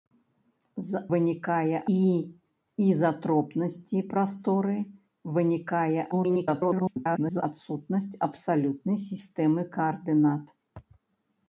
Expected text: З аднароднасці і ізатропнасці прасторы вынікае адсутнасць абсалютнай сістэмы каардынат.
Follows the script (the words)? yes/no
no